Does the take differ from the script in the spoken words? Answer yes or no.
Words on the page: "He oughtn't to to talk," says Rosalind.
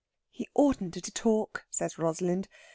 no